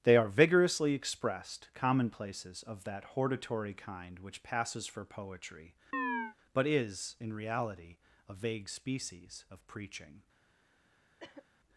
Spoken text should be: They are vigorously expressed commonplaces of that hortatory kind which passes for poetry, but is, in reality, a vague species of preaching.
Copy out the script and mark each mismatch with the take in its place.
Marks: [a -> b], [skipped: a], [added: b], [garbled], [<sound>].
They are vigorously expressed commonplaces of that hortatory kind which passes for poetry, [chirp] but is, in reality, a vague species of preaching. [cough]